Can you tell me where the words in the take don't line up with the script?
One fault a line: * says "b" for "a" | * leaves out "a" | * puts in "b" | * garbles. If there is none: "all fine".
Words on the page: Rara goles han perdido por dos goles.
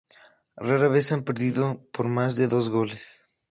* says "vez" for "goles"
* puts in "más de"